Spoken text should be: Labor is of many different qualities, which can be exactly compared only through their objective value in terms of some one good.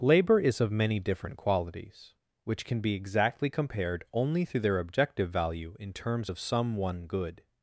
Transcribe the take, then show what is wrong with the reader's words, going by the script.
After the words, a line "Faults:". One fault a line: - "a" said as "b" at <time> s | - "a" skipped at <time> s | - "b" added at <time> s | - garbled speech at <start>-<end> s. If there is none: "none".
Labor is of many different qualities, which can be exactly compared only through their objective value in terms of some one good.
Faults:
none